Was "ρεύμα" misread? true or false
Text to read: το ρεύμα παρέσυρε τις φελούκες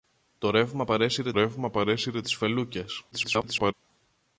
false